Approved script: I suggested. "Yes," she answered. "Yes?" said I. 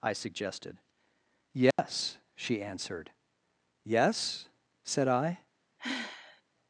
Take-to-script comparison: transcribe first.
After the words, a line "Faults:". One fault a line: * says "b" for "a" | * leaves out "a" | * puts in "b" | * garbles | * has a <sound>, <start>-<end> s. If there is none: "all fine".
I suggested. "Yes," she answered. "Yes?" said I.
Faults:
* has a dropout, 1.7-1.8 s
* has a sigh, 5.8-6.4 s